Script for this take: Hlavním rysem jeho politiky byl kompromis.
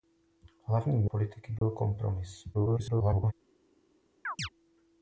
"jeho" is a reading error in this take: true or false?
true